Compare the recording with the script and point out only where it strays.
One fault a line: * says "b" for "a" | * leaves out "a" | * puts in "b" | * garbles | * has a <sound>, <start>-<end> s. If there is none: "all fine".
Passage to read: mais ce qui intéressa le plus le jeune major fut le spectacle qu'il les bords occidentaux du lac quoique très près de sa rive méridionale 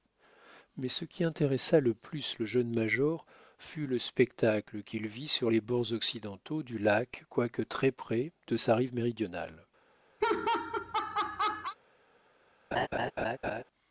* puts in "vit sur"
* has a laugh, 10.2-11.8 s
* has a laugh, 12.7-13.6 s